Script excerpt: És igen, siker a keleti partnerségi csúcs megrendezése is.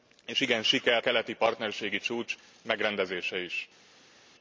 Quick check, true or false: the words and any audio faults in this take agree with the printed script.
false